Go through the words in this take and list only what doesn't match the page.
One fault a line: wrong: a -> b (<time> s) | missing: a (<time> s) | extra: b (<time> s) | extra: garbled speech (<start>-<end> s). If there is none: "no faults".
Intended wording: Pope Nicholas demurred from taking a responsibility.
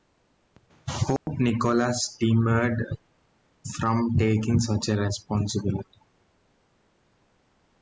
extra: such (4.6 s)